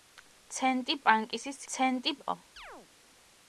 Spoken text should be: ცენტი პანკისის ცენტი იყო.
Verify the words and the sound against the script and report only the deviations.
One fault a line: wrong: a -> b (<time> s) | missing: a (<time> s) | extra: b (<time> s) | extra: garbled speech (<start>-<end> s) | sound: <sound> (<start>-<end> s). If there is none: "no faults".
sound: chirp (2.6-2.9 s)